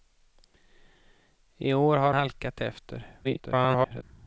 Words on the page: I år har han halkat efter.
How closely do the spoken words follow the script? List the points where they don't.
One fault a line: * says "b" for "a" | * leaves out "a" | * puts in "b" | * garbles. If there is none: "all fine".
* leaves out "han"
* garbles